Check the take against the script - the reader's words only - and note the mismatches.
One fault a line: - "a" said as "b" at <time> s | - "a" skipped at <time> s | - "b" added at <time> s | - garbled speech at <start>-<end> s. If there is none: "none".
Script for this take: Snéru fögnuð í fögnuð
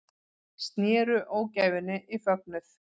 - "fögnuð" said as "ógæfunni" at 1.4 s